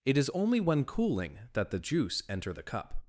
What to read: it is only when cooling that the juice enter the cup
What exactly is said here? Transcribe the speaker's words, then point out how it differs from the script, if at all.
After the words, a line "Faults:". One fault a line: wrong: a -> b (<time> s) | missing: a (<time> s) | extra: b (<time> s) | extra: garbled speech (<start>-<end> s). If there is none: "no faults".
it is only when cooling that the juice enter the cup
Faults:
no faults